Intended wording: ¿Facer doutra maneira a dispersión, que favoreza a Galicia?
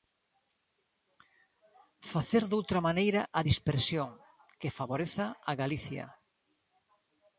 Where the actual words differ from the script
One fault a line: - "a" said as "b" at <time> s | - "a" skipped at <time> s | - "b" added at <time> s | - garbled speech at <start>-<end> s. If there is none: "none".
none